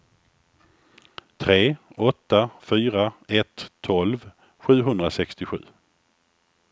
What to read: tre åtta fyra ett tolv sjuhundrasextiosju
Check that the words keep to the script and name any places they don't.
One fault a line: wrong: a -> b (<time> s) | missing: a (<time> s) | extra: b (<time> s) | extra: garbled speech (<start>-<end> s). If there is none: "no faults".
no faults